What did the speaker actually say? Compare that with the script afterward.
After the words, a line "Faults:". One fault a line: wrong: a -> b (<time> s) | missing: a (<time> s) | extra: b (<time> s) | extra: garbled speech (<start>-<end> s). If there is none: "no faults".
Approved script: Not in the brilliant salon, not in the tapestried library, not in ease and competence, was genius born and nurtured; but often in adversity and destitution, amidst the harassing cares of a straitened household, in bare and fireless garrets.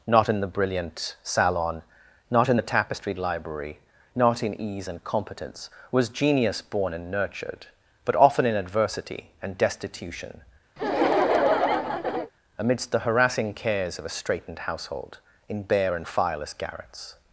Not in the brilliant salon, not in the tapestried library, not in ease and competence, was genius born and nurtured; but often in adversity and destitution, amidst the harassing cares of a straitened household, in bare and fireless garrets.
Faults:
no faults